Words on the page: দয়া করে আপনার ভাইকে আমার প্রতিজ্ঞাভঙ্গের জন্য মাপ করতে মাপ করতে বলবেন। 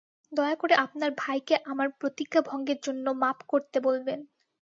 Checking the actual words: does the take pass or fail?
fail